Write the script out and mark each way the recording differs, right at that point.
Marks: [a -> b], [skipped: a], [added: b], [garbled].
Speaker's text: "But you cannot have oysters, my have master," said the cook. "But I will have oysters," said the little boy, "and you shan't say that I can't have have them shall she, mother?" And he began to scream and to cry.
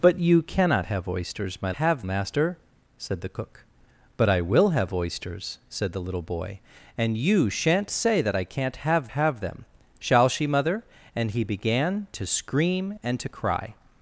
"But you cannot have oysters, my have master," said the cook. "But I will have oysters," said the little boy, "and you shan't say that I can't have have them shall she, mother?" And he began to scream and to cry.